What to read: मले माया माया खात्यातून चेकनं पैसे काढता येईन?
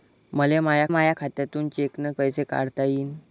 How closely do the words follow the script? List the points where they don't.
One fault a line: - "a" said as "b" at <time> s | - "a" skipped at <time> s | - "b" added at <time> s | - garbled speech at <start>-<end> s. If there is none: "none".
none